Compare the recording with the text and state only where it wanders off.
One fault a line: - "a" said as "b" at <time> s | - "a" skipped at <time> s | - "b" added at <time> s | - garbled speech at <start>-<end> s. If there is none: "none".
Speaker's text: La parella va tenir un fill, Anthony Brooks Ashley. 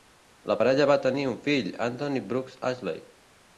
none